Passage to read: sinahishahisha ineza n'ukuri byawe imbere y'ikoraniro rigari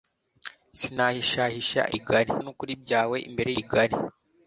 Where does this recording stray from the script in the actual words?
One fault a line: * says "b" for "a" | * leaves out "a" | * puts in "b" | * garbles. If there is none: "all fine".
* says "rigari" for "ineza"
* leaves out "y'ikoraniro"